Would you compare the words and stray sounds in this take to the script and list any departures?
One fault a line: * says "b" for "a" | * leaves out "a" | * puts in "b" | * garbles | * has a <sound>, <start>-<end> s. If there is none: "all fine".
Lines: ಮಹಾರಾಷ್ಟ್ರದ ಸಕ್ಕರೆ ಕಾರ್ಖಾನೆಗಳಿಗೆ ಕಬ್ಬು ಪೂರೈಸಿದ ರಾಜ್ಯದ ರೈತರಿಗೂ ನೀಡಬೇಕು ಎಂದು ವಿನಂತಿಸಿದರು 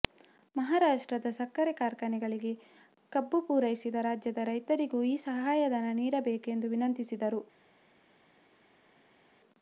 * puts in "ಈ ಸಹಾಯಧನ"